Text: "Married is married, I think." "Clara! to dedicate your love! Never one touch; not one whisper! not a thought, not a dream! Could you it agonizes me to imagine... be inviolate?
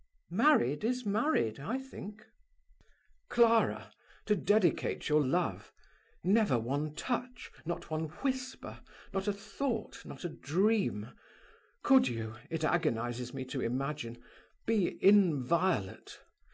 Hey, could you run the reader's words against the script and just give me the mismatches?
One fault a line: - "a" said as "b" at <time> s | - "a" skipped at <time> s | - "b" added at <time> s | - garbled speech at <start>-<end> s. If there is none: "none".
none